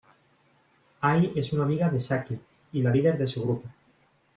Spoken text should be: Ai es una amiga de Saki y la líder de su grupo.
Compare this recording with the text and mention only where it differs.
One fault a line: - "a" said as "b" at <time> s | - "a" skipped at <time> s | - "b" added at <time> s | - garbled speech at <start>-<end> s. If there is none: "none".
none